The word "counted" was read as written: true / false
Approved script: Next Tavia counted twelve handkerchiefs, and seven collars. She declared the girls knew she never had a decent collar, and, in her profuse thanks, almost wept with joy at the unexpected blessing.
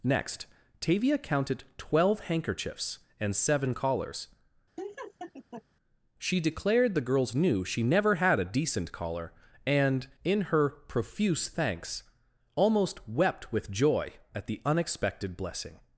true